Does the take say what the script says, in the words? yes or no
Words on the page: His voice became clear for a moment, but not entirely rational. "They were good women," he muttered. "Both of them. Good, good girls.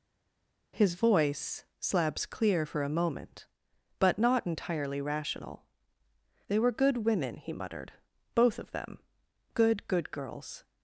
no